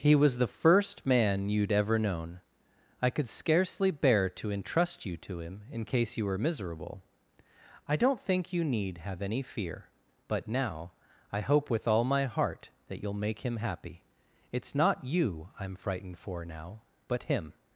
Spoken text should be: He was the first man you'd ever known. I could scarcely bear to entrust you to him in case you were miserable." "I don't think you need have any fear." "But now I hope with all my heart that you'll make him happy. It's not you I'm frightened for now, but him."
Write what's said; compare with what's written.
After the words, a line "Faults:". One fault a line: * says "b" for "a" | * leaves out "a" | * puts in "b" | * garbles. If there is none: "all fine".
He was the first man you'd ever known. I could scarcely bear to entrust you to him in case you were miserable." "I don't think you need have any fear." "But now I hope with all my heart that you'll make him happy. It's not you I'm frightened for now, but him."
Faults:
all fine